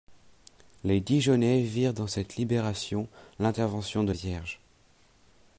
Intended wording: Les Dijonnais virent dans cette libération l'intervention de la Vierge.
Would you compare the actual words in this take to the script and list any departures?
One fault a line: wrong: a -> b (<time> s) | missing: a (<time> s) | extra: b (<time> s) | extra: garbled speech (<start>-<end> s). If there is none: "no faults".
missing: la (4.1 s)